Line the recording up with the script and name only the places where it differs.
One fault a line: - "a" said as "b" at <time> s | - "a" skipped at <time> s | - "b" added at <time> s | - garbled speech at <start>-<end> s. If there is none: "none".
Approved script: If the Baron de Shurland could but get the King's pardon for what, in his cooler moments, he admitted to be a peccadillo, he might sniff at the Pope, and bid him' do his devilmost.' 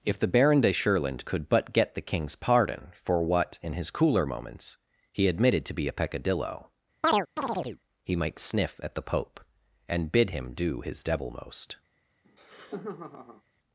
none